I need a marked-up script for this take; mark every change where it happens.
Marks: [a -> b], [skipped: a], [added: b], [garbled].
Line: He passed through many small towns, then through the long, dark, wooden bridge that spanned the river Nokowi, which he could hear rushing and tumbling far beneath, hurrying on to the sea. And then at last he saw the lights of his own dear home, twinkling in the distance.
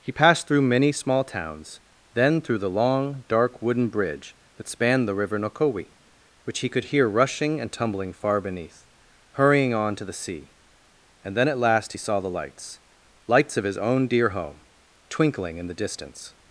He passed through many small towns, then through the long, dark, wooden bridge that spanned the river Nokowi, which he could hear rushing and tumbling far beneath, hurrying on to the sea. And then at last he saw the lights [added: lights] of his own dear home, twinkling in the distance.